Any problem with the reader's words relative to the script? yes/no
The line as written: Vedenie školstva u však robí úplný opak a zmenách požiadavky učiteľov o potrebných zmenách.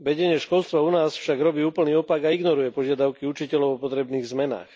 yes